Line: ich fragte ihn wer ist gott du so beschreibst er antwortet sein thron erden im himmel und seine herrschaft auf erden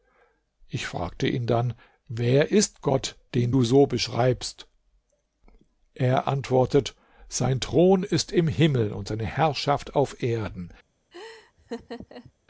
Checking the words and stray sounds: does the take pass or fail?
fail